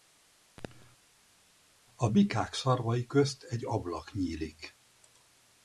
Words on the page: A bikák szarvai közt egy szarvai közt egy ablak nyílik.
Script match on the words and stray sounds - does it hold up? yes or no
no